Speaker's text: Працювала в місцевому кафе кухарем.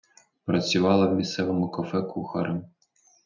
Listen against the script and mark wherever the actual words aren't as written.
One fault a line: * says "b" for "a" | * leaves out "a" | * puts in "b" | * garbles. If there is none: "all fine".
all fine